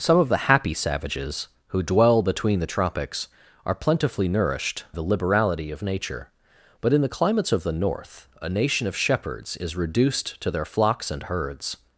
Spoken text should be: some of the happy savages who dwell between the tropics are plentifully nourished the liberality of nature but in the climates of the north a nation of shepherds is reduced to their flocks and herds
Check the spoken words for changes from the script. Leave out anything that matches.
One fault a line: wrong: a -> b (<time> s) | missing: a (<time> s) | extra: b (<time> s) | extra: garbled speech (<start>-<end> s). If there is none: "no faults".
no faults